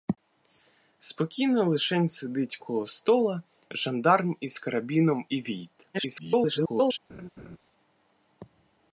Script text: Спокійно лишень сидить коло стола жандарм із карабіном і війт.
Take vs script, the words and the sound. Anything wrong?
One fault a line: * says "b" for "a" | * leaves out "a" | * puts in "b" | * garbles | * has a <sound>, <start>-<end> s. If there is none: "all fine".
* garbles
* has a laugh, 7.1-7.6 s